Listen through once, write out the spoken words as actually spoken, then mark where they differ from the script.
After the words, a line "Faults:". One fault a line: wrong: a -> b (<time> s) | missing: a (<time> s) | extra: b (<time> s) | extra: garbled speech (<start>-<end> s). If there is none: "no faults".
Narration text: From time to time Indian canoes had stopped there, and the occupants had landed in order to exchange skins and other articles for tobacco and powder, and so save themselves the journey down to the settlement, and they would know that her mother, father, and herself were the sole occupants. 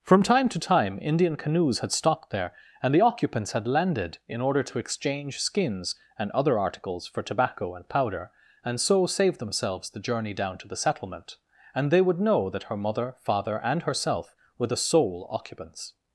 From time to time Indian canoes had stopped there, and the occupants had landed in order to exchange skins and other articles for tobacco and powder, and so save themselves the journey down to the settlement, and they would know that her mother, father, and herself were the sole occupants.
Faults:
no faults